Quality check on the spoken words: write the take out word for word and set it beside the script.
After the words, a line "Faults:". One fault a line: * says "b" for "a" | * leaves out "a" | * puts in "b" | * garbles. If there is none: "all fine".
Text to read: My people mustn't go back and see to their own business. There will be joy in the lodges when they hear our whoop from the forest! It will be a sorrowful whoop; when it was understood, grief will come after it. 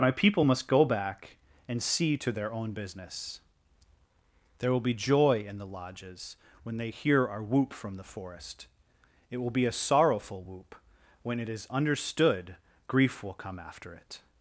My people must go back and see to their own business. There will be joy in the lodges when they hear our whoop from the forest! It will be a sorrowful whoop; when it is understood, grief will come after it.
Faults:
* says "must" for "mustn't"
* says "is" for "was"